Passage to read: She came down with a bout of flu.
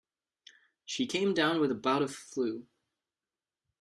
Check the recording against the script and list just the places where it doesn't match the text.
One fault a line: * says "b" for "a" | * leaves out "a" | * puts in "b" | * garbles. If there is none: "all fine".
all fine